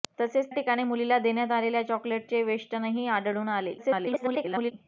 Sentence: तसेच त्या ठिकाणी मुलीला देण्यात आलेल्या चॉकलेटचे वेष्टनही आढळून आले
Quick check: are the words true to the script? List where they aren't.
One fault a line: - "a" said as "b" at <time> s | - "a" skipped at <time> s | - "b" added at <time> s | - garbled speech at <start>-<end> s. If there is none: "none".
- "त्या" skipped at 0.5 s
- garbled speech at 3.8-4.7 s